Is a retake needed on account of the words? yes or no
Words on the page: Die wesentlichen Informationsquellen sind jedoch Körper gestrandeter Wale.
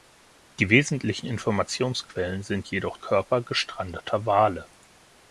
no